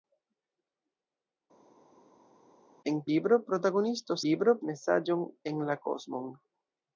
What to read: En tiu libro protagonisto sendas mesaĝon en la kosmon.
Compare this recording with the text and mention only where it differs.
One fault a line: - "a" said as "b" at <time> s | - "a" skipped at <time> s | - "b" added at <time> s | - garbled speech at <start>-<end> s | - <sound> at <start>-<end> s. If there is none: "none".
- "tiu" skipped at 3.0 s
- "sendas" said as "libro" at 4.2 s